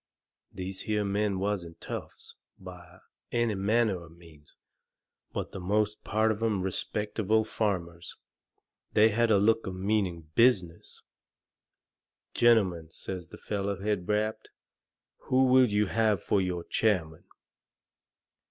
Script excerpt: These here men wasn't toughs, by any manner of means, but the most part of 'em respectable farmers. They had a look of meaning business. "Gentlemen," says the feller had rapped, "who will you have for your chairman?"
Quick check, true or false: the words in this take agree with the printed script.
true